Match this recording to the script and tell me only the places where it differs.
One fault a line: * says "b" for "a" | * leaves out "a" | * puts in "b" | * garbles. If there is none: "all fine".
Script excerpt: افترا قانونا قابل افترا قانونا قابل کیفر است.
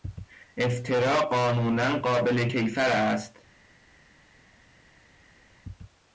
* leaves out "افترا قانونا قابل"